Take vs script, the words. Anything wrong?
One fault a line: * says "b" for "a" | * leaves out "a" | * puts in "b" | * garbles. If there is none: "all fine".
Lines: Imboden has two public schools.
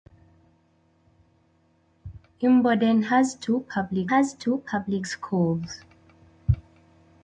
* puts in "has two public"